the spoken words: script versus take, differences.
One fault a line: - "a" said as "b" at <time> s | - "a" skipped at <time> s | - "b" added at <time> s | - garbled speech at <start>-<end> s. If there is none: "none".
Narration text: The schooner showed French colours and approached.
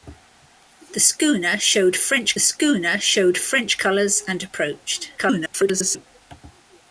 - "schooner showed French" added at 2.4 s
- garbled speech at 5.2-6.1 s